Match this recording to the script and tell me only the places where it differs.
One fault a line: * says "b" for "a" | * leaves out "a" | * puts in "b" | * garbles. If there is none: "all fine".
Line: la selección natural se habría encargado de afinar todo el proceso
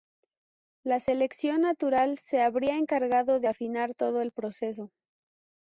all fine